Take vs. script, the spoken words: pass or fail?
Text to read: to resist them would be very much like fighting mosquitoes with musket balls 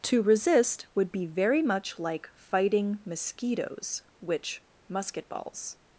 fail